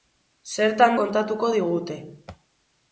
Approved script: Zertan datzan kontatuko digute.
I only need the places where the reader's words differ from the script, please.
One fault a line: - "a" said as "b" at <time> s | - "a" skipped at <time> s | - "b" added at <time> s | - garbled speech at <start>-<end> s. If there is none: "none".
- "datzan" skipped at 1.0 s